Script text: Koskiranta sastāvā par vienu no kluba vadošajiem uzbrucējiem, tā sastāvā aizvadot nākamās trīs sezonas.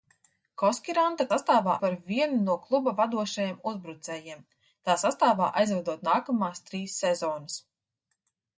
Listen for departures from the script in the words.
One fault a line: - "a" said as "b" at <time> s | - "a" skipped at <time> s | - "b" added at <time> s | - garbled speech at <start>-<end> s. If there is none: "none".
none